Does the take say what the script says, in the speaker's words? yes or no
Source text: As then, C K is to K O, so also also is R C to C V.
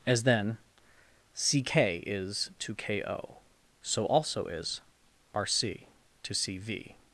no